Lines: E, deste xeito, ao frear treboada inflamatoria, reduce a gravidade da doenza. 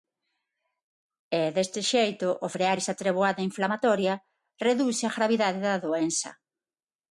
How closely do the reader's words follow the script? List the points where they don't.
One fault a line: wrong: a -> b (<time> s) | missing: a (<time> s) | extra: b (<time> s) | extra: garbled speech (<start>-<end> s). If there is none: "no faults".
extra: esa (2.8 s)